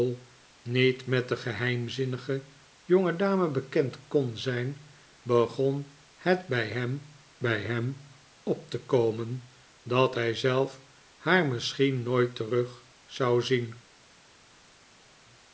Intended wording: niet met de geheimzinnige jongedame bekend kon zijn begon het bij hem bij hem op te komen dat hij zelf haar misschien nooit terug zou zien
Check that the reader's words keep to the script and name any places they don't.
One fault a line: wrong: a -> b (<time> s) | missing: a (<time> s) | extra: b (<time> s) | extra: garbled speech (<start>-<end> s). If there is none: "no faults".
no faults